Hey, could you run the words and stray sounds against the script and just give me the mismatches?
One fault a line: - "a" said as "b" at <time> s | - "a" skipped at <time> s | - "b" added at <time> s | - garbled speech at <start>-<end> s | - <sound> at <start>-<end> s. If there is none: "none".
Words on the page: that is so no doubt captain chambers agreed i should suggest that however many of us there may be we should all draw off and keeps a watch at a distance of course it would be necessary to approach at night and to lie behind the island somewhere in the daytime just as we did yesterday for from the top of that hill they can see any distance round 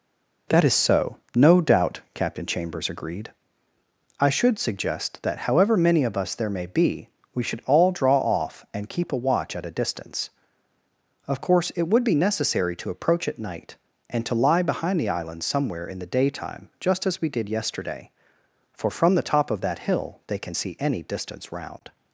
- "keeps" said as "keep" at 8.9 s